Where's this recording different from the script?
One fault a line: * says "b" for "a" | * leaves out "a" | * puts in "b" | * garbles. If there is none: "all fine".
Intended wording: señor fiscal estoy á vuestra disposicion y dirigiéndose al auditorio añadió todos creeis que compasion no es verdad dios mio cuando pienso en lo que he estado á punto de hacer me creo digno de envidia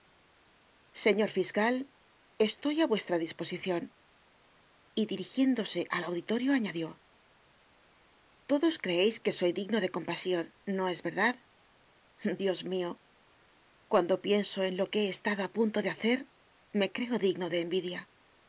* puts in "soy digno de"